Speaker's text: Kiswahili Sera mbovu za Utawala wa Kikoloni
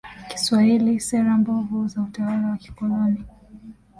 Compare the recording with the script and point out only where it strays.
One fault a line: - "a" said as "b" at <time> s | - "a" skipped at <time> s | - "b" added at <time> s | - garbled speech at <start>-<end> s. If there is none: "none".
none